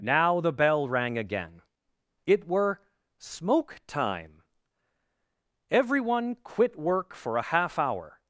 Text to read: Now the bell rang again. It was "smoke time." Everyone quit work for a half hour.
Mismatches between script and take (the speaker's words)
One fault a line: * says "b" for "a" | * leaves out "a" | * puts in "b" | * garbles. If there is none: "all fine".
* says "were" for "was"